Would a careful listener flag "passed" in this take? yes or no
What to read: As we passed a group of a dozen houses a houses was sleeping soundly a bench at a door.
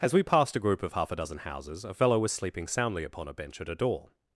no